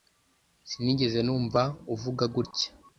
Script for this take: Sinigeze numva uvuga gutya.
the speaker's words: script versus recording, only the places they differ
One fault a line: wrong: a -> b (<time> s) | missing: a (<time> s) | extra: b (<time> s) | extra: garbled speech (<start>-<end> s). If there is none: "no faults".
no faults